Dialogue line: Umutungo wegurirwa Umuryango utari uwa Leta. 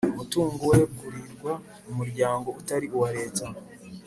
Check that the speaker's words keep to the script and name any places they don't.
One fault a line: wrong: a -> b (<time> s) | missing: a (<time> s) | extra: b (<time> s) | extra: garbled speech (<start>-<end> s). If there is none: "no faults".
no faults